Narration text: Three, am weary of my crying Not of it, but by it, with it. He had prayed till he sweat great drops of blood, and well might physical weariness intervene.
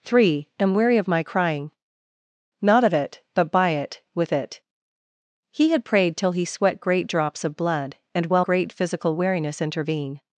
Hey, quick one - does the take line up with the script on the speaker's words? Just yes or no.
no